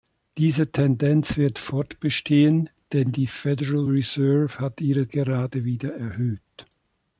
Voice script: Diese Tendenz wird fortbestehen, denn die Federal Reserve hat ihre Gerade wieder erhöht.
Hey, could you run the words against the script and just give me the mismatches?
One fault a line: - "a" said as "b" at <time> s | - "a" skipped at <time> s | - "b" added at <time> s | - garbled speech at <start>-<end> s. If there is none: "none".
none